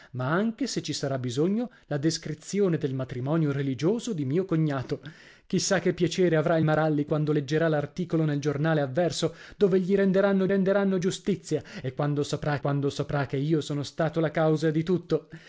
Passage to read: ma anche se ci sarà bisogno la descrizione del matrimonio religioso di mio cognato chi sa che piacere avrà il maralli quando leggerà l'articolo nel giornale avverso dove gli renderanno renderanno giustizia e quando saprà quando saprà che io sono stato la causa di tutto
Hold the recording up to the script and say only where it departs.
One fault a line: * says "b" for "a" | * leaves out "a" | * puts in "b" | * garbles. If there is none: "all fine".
all fine